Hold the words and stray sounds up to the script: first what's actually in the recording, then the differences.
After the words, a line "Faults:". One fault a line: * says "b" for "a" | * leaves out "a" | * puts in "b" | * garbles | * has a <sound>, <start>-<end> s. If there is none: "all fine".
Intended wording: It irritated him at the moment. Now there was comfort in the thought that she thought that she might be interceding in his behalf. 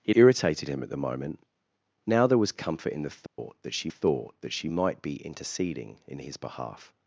It irritated him at the moment. Now there was comfort in the thought that she thought that she might be interceding in his behalf.
Faults:
* has a dropout, 3.3-3.4 s